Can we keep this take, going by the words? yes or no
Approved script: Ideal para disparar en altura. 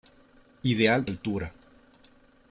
no